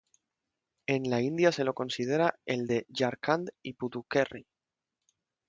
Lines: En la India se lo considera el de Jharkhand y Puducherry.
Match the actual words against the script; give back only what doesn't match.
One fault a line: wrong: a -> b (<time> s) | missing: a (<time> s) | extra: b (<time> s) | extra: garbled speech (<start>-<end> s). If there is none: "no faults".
no faults